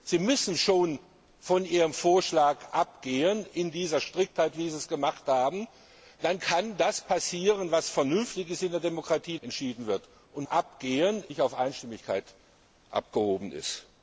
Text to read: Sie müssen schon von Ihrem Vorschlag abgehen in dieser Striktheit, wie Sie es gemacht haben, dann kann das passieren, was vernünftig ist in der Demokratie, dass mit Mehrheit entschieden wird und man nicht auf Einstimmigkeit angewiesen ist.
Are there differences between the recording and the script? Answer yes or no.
yes